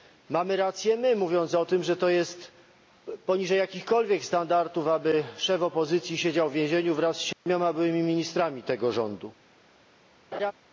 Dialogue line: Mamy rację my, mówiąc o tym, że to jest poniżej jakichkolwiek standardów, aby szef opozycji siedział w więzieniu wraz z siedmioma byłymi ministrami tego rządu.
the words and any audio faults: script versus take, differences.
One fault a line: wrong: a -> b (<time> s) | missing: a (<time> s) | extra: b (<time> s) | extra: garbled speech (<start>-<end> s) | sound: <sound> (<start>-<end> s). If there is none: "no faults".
sound: dropout (7.3-7.5 s)
sound: laugh (10.3-10.5 s)